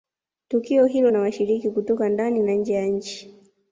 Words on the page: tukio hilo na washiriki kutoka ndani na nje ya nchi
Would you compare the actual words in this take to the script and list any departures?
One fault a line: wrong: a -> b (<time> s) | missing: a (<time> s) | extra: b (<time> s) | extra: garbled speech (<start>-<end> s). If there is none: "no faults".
no faults